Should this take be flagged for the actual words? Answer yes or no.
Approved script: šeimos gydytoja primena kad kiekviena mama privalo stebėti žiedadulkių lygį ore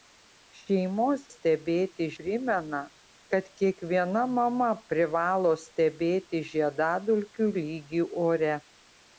yes